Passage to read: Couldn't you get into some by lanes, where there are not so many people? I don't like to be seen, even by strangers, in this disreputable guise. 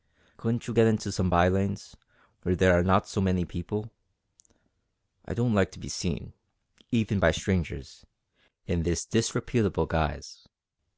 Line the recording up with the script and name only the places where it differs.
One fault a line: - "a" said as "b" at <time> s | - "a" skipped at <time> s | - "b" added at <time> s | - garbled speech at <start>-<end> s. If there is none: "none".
none